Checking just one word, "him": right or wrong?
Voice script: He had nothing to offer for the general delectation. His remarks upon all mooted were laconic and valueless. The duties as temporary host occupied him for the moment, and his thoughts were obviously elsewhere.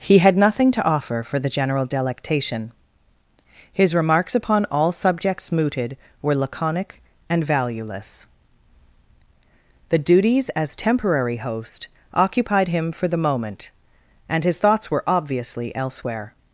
right